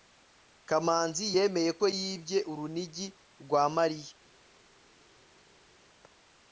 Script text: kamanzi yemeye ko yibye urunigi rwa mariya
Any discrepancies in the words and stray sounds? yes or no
no